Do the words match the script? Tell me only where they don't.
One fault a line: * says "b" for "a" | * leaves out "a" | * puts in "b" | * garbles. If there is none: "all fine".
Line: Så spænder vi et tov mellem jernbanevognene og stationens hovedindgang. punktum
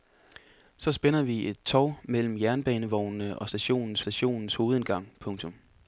* puts in "stationens"